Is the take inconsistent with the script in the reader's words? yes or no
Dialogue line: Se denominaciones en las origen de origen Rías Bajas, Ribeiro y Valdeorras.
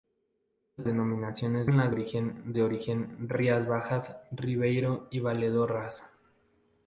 no